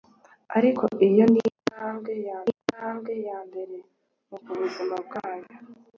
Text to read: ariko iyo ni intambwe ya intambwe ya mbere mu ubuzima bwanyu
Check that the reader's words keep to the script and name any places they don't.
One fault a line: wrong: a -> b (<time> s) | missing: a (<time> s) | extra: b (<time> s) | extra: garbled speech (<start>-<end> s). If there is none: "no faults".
no faults